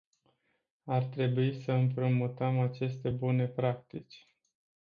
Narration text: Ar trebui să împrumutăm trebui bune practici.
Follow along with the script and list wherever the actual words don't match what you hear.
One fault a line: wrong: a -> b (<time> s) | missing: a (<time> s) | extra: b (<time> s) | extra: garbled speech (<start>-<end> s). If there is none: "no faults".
wrong: trebui -> aceste (2.6 s)